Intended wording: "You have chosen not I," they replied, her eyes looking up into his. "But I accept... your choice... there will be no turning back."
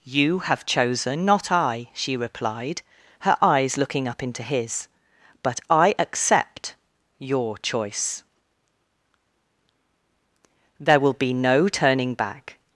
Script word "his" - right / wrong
right